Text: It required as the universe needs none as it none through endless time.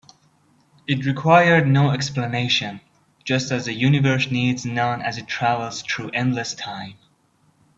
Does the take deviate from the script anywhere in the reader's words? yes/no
yes